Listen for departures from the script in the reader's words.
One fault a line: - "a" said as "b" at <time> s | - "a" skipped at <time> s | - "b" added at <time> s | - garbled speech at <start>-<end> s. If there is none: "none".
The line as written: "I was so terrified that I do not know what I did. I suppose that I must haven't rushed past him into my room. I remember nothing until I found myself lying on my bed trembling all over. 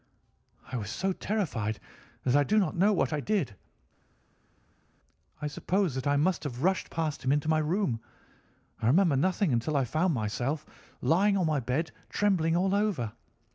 - "haven't" said as "have" at 6.4 s